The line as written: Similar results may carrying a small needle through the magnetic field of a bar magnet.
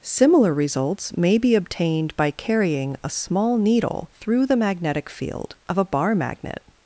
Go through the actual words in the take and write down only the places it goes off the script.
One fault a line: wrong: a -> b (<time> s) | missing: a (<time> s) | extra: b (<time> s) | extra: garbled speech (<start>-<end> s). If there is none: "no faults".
extra: be obtained by (1.4 s)